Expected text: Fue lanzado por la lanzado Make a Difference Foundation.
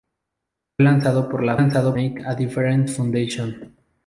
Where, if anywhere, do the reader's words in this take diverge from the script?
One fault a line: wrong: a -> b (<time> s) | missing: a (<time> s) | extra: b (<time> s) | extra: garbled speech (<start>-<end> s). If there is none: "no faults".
no faults